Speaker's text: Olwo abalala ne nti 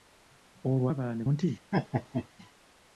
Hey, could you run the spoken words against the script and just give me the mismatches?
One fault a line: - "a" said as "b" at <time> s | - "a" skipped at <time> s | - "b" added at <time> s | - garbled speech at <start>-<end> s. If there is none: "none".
none